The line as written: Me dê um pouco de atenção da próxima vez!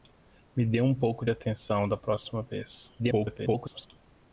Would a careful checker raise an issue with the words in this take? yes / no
yes